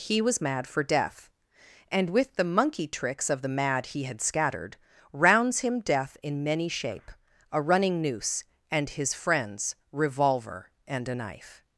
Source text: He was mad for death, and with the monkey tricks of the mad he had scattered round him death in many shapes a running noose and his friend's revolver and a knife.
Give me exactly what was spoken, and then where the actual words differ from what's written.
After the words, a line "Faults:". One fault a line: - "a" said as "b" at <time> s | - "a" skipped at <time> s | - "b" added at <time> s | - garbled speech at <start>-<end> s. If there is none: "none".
He was mad for death, and with the monkey tricks of the mad he had scattered rounds him death in many shape a running noose and his friend's revolver and a knife.
Faults:
- "round" said as "rounds" at 5.1 s
- "shapes" said as "shape" at 6.7 s